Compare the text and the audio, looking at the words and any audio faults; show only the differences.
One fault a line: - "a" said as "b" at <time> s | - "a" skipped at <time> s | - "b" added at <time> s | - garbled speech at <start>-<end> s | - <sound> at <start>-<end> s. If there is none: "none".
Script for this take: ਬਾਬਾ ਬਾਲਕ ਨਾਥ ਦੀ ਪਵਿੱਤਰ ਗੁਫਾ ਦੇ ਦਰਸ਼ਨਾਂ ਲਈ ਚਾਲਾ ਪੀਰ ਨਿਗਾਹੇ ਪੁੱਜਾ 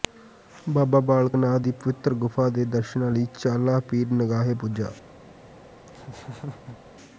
- laugh at 5.9-6.8 s